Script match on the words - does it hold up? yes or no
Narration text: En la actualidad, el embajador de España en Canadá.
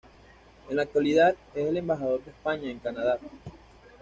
no